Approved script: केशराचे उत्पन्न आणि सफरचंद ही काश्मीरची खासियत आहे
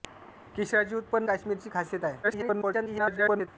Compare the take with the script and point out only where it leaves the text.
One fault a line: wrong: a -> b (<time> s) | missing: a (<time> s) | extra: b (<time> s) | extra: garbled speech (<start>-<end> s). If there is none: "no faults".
missing: आणि सफरचंद ही (1.3 s)
extra: garbled speech (2.2-3.5 s)